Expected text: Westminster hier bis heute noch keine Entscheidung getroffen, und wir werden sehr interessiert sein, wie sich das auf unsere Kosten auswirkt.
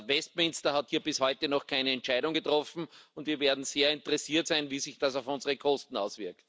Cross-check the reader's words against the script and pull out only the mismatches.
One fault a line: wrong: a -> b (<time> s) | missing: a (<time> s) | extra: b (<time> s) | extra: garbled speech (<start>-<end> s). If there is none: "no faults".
extra: hat (0.7 s)